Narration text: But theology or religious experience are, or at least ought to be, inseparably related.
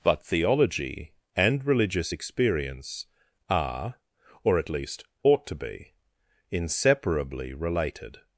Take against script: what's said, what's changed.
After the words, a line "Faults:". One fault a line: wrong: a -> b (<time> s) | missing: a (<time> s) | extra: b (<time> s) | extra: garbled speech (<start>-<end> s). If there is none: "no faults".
But theology and religious experience are, or at least ought to be, inseparably related.
Faults:
wrong: or -> and (1.4 s)